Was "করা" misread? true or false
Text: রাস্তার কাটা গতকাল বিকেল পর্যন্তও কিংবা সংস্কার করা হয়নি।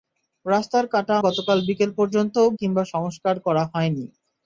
false